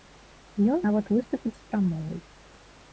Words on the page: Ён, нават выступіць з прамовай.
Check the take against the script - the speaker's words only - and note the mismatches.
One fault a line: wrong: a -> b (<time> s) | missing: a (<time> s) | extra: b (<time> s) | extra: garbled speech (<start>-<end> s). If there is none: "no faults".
no faults